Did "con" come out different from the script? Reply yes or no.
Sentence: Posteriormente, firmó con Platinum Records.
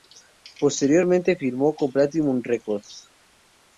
no